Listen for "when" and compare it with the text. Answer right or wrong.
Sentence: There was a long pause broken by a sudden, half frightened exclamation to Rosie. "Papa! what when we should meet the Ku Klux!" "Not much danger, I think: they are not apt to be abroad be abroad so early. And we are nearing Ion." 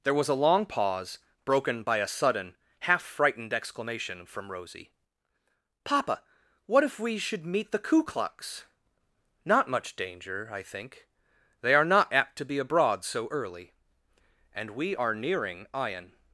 wrong